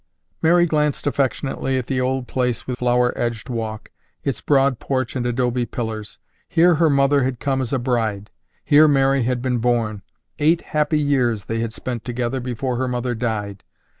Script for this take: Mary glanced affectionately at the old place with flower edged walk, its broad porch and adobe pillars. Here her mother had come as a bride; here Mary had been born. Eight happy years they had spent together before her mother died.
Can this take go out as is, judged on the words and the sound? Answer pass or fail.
pass